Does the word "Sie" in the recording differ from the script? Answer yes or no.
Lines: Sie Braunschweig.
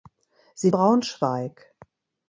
no